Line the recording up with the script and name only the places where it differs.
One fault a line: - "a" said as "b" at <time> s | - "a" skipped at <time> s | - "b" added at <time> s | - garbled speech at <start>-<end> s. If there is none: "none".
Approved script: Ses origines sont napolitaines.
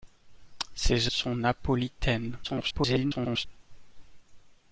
- "origines" skipped at 1.1 s
- garbled speech at 2.4-3.5 s